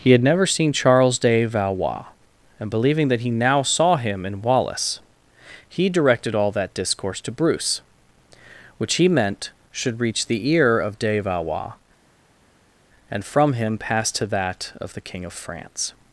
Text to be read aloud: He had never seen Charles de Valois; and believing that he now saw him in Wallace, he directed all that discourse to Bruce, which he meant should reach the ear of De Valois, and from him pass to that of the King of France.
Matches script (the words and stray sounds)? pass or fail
pass